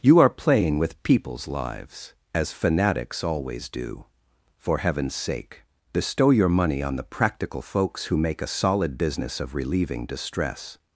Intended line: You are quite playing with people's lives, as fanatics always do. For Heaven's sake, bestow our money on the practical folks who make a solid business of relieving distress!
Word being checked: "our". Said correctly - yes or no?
no